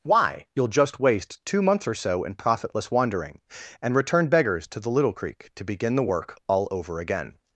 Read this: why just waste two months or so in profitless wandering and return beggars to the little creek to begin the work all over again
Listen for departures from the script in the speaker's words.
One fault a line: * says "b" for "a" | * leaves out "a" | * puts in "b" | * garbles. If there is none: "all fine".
* puts in "you'll"